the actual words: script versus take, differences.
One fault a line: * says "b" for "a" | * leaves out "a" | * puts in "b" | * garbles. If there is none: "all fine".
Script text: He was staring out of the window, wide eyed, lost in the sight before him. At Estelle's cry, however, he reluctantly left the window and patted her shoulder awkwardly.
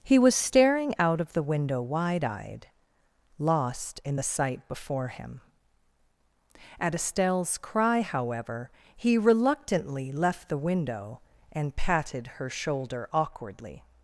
all fine